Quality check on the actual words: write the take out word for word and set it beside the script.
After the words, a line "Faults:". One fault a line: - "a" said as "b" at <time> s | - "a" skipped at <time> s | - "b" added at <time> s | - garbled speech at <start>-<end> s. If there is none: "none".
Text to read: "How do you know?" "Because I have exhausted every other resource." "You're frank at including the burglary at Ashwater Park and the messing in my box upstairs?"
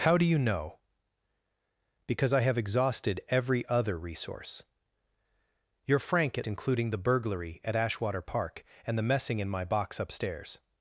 "How do you know?" "Because I have exhausted every other resource." "You're frank at including the burglary at Ashwater Park and the messing in my box upstairs?"
Faults:
none